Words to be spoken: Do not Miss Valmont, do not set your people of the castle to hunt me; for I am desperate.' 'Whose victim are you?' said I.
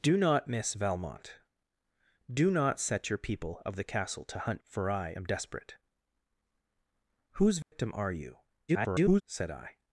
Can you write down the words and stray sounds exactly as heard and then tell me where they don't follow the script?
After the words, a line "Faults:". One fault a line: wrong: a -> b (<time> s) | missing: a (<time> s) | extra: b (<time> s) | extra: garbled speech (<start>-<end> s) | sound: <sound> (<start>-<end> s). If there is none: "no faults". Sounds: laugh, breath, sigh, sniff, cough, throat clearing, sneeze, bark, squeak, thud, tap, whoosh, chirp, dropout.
Do not Miss Valmont, do not set your people of the castle to hunt; for I am desperate.' 'Whose victim are you?' [garbled] said I.
Faults:
missing: me (4.6 s)
sound: dropout (7.6-7.7 s)
extra: garbled speech (8.7-9.2 s)